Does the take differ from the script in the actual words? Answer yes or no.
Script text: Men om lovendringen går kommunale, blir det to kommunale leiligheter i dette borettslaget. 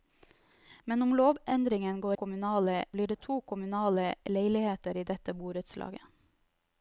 no